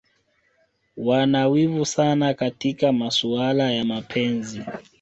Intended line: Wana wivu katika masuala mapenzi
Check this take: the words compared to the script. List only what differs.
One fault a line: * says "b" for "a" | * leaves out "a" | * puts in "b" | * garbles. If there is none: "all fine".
* puts in "sana"
* puts in "ya"